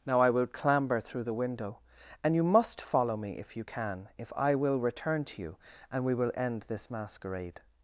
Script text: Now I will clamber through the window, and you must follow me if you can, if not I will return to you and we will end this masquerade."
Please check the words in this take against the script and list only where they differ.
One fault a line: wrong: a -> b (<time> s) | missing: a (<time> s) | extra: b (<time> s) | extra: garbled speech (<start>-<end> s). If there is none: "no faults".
missing: not (4.3 s)